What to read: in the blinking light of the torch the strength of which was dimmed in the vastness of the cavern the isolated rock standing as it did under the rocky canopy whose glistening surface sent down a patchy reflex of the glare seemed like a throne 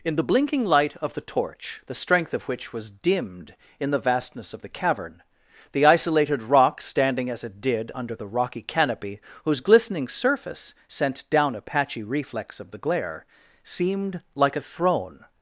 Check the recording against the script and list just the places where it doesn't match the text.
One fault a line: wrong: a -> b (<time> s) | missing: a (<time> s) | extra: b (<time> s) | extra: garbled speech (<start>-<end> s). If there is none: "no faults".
no faults